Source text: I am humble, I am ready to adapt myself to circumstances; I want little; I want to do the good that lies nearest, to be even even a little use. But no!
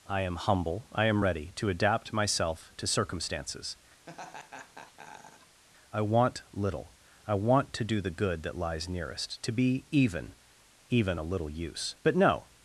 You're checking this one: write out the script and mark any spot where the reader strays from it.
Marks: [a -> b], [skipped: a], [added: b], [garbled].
I am humble, I am ready to adapt myself to circumstances; I want little; I want to do the good that lies nearest, to be even even a little use. But no!